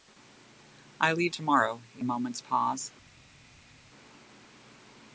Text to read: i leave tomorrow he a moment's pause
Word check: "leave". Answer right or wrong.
right